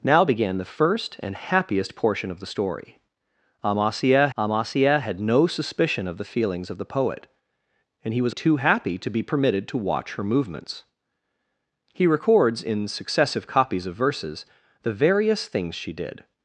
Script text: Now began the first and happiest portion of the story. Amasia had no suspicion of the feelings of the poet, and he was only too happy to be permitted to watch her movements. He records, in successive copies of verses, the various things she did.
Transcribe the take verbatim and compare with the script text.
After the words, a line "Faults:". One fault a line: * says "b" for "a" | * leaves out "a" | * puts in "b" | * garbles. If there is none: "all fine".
Now began the first and happiest portion of the story. Amasia amasia had no suspicion of the feelings of the poet, and he was too happy to be permitted to watch her movements. He records, in successive copies of verses, the various things she did.
Faults:
* puts in "amasia"
* leaves out "only"